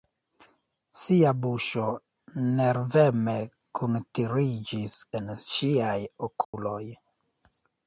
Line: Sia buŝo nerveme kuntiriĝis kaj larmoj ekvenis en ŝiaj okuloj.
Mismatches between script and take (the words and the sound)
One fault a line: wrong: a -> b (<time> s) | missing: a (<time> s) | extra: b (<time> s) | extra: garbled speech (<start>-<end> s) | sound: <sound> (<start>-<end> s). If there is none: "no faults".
missing: kaj larmoj ekvenis (5.0 s)
sound: dropout (6.4-6.5 s)